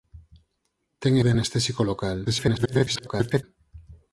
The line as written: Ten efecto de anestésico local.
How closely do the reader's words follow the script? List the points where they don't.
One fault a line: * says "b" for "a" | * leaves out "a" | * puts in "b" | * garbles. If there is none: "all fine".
* leaves out "efecto"
* garbles